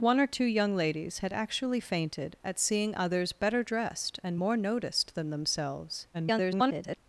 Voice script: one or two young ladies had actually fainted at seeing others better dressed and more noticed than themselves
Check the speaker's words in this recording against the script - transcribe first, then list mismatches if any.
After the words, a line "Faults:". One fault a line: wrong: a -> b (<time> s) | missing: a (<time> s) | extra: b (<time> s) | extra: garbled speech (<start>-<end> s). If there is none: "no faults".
one or two young ladies had actually fainted at seeing others better dressed and more noticed than themselves [garbled]
Faults:
extra: garbled speech (6.1-7.0 s)